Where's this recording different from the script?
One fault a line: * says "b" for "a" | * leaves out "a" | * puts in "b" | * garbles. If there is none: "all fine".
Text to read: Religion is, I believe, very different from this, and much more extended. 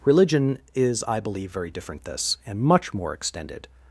* leaves out "from"